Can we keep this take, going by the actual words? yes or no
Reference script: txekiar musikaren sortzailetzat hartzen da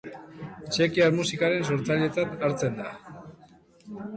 yes